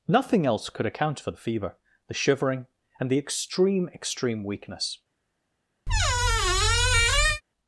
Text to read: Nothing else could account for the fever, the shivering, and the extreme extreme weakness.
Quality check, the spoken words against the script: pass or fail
pass